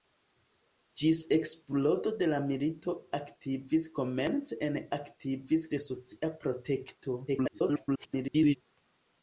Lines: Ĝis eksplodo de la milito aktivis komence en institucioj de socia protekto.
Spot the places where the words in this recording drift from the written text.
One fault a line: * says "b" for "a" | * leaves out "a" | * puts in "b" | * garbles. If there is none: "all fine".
* says "aktivis" for "institucioj"
* garbles